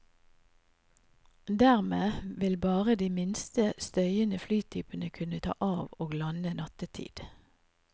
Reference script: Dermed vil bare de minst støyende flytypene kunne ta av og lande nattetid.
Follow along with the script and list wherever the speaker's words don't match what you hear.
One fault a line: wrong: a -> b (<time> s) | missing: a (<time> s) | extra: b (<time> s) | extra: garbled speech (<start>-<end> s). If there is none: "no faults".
no faults